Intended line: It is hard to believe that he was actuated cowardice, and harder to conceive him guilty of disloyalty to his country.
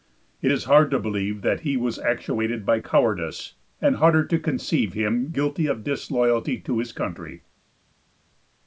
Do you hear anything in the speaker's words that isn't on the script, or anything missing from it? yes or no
yes